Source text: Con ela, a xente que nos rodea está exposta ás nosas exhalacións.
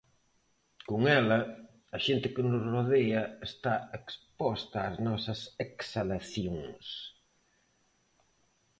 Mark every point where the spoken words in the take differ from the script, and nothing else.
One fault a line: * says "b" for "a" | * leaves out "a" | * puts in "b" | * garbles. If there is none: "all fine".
all fine